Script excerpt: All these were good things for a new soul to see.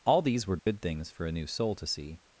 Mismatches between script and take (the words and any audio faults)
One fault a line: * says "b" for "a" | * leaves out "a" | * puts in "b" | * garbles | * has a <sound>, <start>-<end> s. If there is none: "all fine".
* has a dropout, 0.6-0.7 s